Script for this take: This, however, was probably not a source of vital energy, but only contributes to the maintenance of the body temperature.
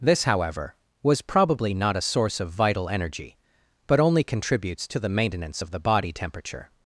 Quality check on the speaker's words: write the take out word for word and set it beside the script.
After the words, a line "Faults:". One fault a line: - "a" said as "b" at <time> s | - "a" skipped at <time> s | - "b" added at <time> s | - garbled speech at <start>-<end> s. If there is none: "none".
This, however, was probably not a source of vital energy, but only contributes to the maintenance of the body temperature.
Faults:
none